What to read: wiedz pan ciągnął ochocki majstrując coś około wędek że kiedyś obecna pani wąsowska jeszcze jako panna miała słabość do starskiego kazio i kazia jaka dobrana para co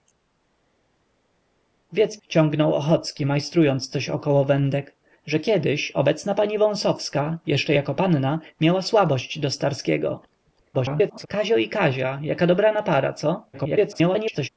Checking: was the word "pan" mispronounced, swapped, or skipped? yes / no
yes